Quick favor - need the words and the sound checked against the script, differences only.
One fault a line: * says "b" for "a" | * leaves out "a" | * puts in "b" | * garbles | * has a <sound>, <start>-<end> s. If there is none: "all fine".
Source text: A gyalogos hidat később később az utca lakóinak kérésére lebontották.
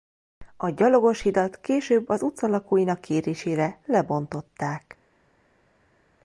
* leaves out "később"